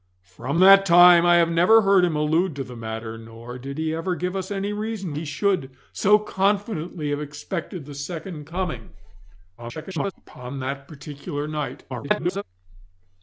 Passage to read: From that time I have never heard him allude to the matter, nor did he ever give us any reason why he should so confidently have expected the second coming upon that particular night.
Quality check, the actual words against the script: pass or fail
fail